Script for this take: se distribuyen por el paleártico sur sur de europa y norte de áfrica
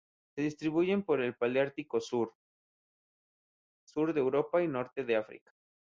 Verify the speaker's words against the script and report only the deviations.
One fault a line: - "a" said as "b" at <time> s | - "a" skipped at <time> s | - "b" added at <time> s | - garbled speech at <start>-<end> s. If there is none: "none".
none